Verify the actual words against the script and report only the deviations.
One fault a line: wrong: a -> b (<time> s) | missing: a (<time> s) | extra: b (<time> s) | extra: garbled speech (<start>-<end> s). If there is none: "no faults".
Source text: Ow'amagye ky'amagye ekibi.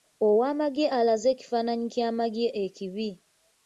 extra: alaze ekifaananyi (1.0 s)